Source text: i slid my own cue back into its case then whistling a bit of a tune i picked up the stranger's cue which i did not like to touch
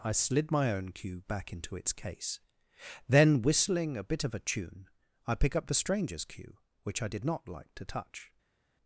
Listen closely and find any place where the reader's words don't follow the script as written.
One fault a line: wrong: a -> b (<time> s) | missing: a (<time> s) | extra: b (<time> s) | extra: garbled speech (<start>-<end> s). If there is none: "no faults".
wrong: picked -> pick (5.3 s)